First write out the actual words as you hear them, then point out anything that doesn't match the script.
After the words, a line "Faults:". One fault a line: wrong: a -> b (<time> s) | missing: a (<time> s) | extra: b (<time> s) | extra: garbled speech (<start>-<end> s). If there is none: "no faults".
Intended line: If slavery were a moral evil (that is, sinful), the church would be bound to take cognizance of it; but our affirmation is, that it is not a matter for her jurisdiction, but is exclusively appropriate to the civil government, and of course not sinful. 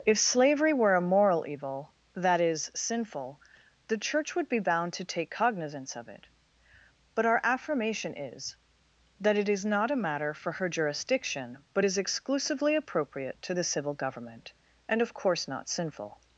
If slavery were a moral evil (that is, sinful), the church would be bound to take cognizance of it; but our affirmation is, that it is not a matter for her jurisdiction, but is exclusively appropriate to the civil government, and of course not sinful.
Faults:
no faults